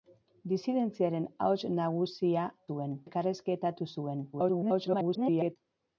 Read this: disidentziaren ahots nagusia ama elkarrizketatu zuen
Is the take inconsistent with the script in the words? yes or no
yes